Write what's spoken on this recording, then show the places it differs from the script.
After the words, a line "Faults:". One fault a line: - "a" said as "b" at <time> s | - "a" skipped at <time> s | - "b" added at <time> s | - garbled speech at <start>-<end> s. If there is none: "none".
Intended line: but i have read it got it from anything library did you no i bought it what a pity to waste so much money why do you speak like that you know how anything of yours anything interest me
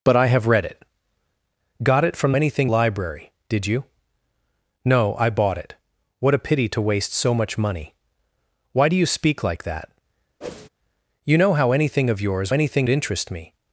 but i have read it got it from anything library did you no i bought it what a pity to waste so much money why do you speak like that you know how anything of yours anything interest me
Faults:
none